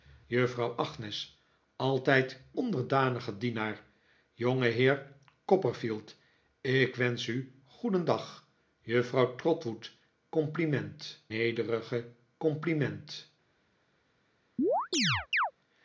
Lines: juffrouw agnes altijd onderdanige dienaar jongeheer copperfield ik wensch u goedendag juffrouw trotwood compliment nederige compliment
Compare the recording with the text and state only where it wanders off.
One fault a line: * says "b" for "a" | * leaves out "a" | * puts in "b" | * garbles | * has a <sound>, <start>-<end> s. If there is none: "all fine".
* has a chirp, 14.6-15.5 s